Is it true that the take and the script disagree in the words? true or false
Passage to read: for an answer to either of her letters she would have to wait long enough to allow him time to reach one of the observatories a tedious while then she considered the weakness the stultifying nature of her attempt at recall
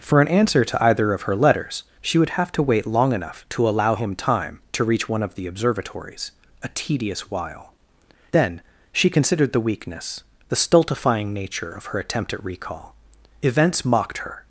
true